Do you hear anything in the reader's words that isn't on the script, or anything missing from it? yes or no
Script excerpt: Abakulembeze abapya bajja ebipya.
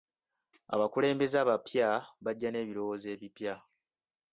yes